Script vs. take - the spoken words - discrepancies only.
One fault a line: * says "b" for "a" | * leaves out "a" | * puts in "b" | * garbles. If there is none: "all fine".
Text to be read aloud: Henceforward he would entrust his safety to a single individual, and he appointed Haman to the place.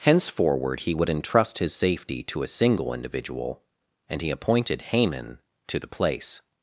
all fine